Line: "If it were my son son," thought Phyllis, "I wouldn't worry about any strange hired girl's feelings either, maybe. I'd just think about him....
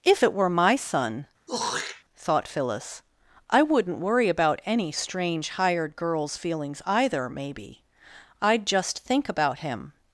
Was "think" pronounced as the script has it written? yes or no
yes